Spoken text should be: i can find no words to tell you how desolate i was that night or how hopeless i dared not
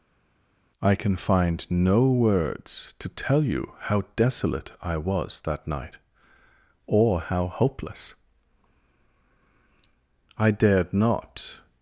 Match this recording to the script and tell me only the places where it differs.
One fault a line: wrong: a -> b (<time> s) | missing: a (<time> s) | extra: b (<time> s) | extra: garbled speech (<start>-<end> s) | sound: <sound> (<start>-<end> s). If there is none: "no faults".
no faults